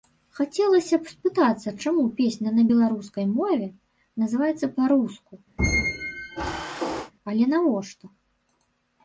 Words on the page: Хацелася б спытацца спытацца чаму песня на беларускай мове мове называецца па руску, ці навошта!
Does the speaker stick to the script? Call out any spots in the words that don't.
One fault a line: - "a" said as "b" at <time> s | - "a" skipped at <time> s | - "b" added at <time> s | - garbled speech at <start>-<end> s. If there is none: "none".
- "спытацца" skipped at 1.7 s
- "мове" skipped at 3.7 s
- "ці" said as "але" at 7.3 s